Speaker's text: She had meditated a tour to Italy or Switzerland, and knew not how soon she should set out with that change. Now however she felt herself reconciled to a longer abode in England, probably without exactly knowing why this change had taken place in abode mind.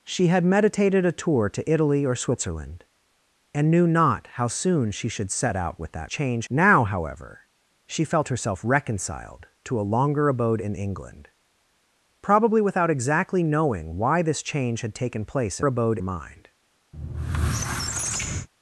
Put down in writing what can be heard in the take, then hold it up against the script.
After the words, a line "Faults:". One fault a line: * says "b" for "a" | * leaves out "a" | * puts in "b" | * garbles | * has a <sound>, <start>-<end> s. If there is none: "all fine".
She had meditated a tour to Italy or Switzerland, and knew not how soon she should set out with that change. Now however she felt herself reconciled to a longer abode in England, probably without exactly knowing why this change had taken place in abode mind.
Faults:
* has a squeak, 16.9-18.5 s